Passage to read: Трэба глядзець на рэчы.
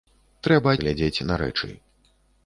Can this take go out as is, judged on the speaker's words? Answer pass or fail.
pass